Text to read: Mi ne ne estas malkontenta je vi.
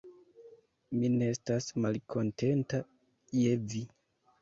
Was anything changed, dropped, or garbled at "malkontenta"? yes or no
no